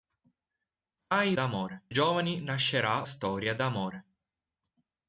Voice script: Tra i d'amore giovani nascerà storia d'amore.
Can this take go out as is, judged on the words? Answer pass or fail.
pass